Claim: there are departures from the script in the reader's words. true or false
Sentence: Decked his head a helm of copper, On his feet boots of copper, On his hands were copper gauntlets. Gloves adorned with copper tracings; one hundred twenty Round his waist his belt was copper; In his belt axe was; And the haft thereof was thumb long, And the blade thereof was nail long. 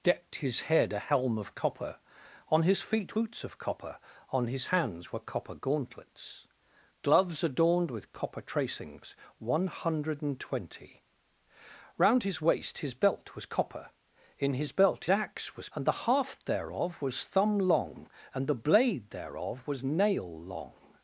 false